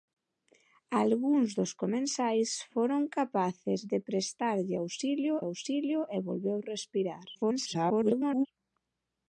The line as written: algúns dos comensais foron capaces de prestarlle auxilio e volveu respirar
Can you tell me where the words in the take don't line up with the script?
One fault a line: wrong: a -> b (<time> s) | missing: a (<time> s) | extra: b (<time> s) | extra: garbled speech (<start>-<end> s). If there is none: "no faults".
extra: auxilio (5.5 s)
extra: garbled speech (7.3-8.5 s)